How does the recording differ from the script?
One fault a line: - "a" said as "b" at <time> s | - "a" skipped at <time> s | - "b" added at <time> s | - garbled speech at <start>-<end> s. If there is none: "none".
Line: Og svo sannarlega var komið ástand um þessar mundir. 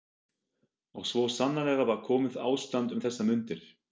none